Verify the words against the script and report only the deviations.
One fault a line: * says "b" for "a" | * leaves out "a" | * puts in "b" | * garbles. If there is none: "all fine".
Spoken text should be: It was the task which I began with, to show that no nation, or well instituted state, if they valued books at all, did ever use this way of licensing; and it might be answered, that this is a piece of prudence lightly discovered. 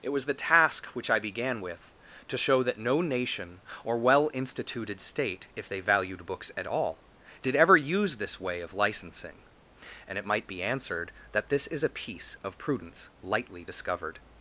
all fine